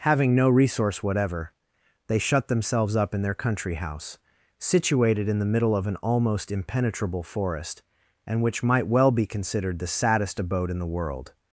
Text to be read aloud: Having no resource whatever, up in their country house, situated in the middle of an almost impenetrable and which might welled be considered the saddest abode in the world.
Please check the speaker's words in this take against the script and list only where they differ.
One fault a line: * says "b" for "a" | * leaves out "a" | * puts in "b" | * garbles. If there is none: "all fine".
* puts in "they shut themselves"
* puts in "forest"
* says "well" for "welled"